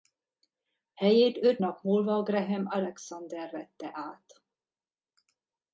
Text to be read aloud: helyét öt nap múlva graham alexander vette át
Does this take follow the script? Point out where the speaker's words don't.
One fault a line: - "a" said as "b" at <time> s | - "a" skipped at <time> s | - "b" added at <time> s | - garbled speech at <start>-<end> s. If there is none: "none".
none